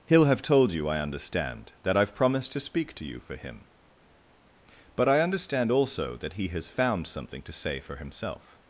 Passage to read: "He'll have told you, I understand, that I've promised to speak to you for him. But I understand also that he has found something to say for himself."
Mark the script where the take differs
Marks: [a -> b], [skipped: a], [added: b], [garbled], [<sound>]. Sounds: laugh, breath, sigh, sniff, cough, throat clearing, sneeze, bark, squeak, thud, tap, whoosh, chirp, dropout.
"He'll have told you, I understand, that I've promised to speak to you for him. But I understand also that he has found something to say for himself."